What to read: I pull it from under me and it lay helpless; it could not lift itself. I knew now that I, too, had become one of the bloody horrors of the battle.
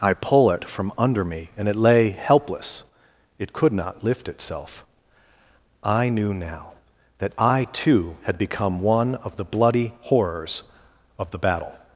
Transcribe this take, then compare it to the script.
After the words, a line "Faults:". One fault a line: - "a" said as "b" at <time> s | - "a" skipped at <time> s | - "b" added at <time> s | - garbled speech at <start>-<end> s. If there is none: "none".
I pull it from under me and it lay helpless; it could not lift itself. I knew now that I, too, had become one of the bloody horrors of the battle.
Faults:
none